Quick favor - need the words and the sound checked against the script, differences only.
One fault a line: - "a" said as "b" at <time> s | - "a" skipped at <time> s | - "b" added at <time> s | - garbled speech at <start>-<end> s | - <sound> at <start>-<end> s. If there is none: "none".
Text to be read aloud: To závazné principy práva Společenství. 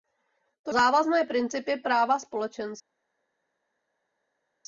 none